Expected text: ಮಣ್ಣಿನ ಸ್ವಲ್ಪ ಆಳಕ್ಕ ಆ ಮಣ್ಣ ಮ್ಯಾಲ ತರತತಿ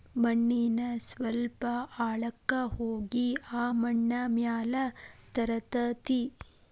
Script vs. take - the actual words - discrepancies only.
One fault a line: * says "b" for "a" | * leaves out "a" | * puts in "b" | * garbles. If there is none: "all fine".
* puts in "ಹೋಗಿ"